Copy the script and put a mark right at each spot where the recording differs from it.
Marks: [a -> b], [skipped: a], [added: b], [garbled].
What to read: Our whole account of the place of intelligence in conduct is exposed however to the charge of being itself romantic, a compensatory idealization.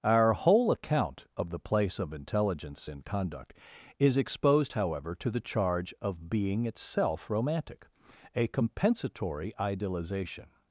Our whole account of the place of intelligence in conduct is exposed however to the charge of being itself romantic, a compensatory idealization.